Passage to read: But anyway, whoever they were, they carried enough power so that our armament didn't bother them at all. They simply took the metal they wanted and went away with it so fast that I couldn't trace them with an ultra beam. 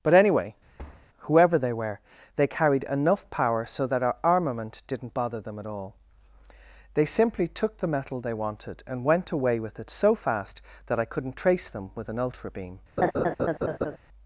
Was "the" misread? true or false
false